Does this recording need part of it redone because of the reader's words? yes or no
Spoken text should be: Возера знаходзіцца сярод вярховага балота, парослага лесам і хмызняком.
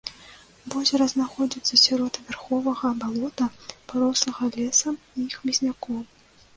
no